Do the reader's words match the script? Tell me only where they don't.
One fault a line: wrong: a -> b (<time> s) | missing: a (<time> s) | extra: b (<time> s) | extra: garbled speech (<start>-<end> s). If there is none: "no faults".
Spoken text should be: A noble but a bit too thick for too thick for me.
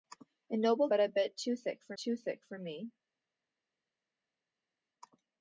no faults